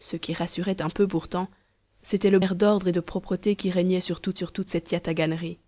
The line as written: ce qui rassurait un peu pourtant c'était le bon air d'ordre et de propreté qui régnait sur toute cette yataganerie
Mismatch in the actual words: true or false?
true